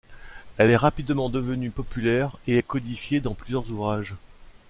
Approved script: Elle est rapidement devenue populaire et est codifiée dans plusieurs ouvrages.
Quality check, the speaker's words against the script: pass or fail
pass